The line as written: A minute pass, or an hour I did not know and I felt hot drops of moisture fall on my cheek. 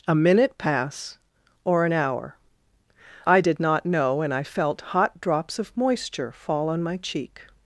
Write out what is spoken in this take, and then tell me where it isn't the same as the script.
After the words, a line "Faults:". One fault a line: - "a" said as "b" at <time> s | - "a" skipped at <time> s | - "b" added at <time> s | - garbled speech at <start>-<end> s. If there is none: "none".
A minute pass, or an hour I did not know and I felt hot drops of moisture fall on my cheek.
Faults:
none